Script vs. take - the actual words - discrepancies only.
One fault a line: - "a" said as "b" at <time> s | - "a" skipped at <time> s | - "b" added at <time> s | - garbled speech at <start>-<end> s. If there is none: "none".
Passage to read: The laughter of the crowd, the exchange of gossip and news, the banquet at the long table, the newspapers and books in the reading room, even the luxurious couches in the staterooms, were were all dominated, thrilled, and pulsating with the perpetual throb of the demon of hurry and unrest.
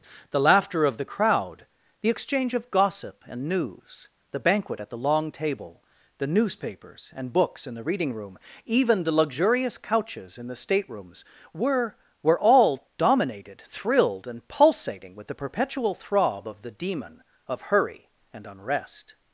none